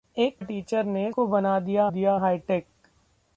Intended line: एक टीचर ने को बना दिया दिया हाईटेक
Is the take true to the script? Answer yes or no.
yes